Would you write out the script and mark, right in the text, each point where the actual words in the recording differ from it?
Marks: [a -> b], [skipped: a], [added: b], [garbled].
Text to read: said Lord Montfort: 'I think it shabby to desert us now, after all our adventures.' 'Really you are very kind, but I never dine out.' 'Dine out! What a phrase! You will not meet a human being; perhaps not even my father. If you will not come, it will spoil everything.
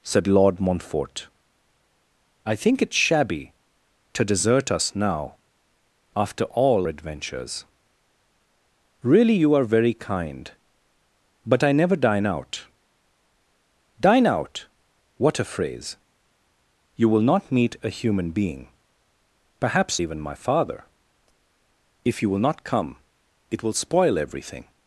said Lord Montfort: 'I think it shabby to desert us now, after all [skipped: our] adventures.' 'Really you are very kind, but I never dine out.' 'Dine out! What a phrase! You will not meet a human being; perhaps [skipped: not] even my father. If you will not come, it will spoil everything.